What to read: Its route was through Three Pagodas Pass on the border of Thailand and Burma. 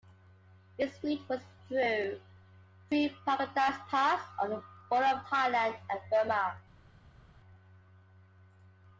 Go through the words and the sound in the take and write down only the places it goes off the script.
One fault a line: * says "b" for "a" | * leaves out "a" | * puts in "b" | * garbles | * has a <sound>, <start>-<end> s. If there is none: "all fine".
all fine